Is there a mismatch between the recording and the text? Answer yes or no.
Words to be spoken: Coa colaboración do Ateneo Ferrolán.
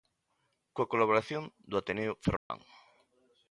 no